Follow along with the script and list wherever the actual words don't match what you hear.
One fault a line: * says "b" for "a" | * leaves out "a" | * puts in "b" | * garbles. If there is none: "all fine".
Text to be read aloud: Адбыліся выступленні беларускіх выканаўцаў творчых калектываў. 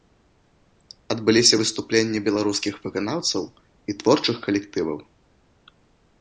* puts in "і"